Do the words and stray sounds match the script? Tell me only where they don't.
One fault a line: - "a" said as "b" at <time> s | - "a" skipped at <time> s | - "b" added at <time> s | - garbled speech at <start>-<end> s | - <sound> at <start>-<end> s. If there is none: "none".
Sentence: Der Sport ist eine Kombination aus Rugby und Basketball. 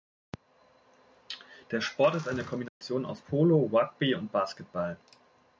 - dropout at 2.7-2.8 s
- "Polo" added at 3.2 s